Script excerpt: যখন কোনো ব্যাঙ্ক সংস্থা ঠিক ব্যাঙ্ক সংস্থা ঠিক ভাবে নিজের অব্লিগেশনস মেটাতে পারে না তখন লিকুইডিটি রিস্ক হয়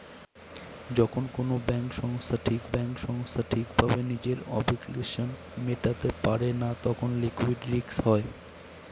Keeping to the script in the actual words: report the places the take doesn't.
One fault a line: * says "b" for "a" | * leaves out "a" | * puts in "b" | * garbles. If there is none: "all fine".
all fine